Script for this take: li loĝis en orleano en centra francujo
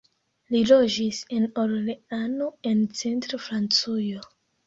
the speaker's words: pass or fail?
pass